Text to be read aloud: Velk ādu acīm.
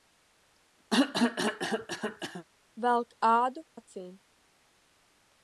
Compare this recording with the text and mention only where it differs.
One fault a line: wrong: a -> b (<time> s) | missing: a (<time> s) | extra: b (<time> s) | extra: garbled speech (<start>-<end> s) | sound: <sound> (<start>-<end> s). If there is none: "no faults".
sound: cough (0.9-2.5 s)